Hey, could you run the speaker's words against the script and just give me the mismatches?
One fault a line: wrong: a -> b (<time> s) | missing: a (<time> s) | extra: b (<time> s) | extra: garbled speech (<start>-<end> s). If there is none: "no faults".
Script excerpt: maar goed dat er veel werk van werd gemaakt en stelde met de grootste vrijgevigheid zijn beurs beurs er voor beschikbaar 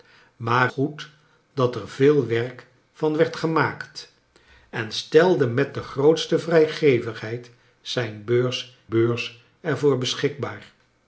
no faults